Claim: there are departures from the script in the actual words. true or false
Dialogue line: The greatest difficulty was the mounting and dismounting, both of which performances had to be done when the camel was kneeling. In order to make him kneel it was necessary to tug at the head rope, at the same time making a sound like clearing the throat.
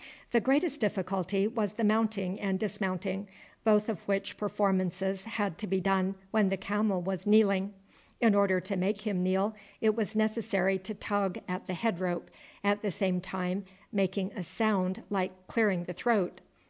false